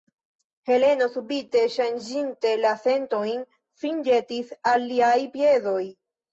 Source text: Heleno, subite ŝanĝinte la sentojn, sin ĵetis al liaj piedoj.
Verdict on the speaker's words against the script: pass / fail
pass